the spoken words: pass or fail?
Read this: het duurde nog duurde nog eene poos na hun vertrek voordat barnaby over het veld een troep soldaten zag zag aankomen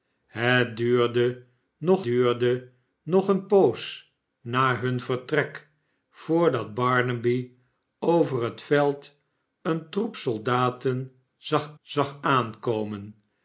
pass